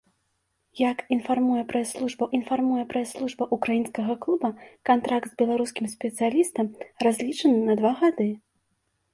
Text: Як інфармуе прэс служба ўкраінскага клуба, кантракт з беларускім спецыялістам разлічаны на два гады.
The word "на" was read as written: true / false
true